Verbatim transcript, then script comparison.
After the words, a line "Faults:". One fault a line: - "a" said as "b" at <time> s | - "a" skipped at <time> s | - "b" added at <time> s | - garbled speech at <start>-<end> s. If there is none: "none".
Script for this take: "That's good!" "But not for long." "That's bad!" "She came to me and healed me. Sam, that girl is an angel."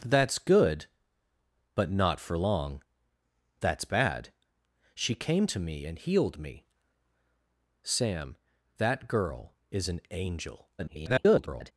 "That's good!" "But not for long." "That's bad!" "She came to me and healed me. Sam, that girl is an angel." [garbled]
Faults:
- garbled speech at 10.8-11.7 s